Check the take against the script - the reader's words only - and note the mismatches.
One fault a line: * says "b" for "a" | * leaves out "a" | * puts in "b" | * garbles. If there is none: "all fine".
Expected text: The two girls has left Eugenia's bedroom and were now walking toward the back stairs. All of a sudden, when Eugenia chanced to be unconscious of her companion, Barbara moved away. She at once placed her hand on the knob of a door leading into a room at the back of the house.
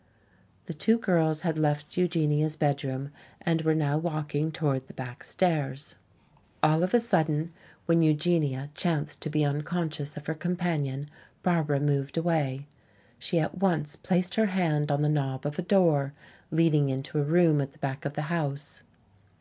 * says "had" for "has"